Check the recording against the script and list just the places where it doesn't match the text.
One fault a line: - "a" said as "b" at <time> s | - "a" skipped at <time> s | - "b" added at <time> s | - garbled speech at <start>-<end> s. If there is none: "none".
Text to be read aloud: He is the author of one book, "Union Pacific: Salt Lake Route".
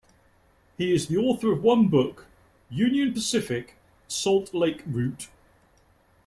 none